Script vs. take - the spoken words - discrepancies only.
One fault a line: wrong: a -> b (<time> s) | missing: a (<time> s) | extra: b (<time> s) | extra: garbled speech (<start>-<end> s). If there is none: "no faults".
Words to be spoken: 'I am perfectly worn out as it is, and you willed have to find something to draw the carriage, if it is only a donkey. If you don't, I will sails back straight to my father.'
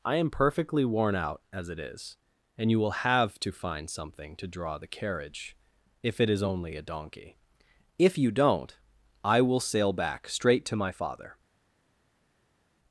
wrong: willed -> will (2.8 s)
wrong: sails -> sail (9.6 s)